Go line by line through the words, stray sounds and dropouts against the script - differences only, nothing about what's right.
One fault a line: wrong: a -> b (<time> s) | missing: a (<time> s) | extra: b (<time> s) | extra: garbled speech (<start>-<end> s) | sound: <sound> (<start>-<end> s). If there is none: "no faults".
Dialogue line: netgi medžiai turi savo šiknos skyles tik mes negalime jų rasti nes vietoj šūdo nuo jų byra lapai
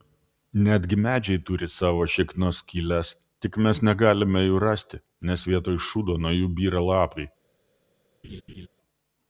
sound: laugh (8.2-8.7 s)